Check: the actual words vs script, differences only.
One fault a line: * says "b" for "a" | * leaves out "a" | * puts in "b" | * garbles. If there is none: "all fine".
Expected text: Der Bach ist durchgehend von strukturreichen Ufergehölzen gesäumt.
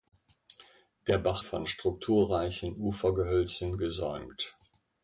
* leaves out "ist durchgehend"